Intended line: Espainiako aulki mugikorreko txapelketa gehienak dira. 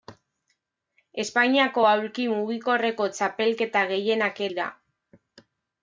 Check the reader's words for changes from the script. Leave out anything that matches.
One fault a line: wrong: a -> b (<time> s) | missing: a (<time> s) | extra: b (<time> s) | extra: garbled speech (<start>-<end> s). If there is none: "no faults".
no faults